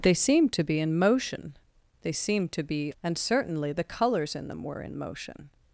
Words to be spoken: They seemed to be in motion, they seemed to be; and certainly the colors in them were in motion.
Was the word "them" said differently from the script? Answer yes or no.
no